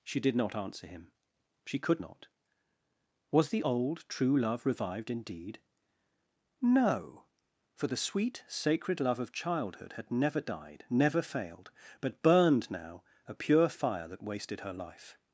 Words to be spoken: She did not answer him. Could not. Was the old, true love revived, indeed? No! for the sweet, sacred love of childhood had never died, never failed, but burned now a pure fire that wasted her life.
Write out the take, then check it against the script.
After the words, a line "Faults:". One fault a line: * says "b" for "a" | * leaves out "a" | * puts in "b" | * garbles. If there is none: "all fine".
She did not answer him. She could not. Was the old, true love revived, indeed? No! for the sweet, sacred love of childhood had never died, never failed, but burned now a pure fire that wasted her life.
Faults:
* puts in "She"